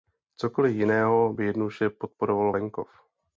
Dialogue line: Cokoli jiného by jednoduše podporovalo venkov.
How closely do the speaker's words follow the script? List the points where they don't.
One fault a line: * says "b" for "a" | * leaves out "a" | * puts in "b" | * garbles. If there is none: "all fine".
all fine